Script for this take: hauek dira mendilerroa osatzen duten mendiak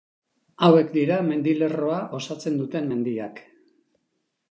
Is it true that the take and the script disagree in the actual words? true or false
false